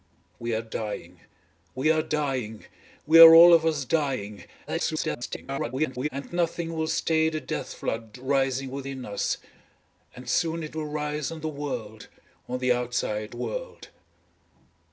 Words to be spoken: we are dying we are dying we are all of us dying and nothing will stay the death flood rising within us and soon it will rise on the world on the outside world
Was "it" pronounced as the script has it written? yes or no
yes